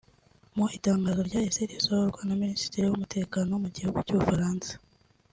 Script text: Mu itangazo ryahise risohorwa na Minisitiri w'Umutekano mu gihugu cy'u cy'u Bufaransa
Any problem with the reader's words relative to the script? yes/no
yes